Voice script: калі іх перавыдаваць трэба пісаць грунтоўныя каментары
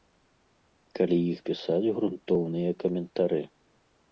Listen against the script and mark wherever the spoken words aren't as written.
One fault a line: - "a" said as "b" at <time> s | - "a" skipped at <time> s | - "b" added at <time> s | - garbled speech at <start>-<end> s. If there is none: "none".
- "перавыдаваць трэба" skipped at 1.4 s